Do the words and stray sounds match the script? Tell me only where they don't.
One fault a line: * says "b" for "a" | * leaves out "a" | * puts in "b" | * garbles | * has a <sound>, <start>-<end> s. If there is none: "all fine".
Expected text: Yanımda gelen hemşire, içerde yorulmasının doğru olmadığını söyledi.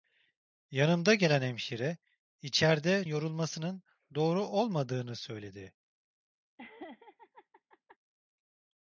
* has a laugh, 6.6-8.0 s